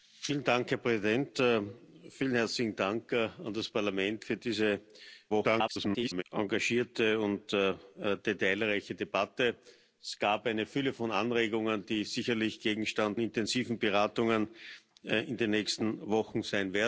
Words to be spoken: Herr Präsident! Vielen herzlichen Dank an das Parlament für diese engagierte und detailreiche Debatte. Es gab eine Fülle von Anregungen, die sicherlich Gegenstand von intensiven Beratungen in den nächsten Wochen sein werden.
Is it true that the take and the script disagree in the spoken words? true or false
true